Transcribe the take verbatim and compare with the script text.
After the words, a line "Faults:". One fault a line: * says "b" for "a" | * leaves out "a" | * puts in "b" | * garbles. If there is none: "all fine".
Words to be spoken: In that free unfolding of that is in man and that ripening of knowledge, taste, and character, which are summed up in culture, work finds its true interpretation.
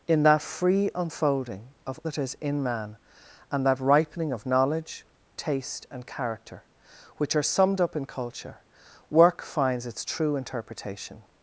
In that free unfolding of that is in man and that ripening of knowledge, taste, and character, which are summed up in culture, work finds its true interpretation.
Faults:
all fine